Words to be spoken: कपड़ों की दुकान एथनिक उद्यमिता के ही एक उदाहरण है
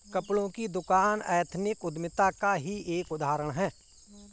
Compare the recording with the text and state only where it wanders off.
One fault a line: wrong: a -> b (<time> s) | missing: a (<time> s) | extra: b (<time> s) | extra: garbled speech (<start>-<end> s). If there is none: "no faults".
wrong: के -> का (2.3 s)